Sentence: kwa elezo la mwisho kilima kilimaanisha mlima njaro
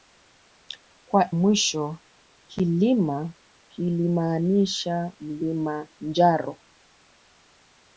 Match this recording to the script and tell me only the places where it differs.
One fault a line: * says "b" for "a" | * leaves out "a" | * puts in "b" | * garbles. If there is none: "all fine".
* leaves out "elezo la"